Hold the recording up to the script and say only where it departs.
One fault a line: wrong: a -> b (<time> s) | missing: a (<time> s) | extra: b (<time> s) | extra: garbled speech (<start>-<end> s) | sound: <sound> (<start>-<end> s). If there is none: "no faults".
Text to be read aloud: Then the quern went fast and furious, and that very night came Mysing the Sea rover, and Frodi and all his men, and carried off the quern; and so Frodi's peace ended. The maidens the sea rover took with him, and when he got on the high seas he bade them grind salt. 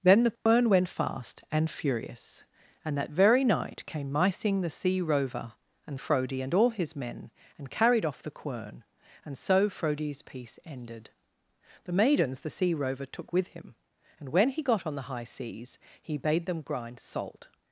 sound: dropout (0.4-0.5 s)